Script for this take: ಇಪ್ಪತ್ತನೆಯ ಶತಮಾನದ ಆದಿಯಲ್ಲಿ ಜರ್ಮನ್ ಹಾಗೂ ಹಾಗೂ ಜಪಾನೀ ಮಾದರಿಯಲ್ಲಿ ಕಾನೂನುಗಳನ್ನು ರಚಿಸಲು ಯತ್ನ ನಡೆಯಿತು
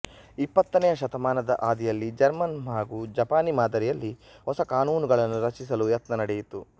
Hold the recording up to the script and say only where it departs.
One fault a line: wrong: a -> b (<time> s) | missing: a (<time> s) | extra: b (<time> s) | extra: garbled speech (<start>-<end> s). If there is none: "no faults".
missing: ಹಾಗೂ (3.0 s)
extra: ಹೊಸ (4.5 s)